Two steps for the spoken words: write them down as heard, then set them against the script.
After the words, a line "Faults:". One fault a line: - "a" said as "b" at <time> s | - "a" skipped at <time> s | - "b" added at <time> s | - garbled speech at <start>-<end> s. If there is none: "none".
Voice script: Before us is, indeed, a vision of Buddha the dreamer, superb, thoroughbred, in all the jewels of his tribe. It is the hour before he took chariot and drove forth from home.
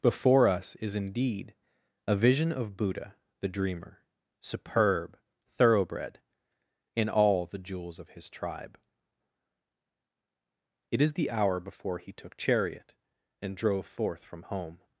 Before us is, indeed, a vision of Buddha the dreamer, superb, thoroughbred, in all the jewels of his tribe. It is the hour before he took chariot and drove forth from home.
Faults:
none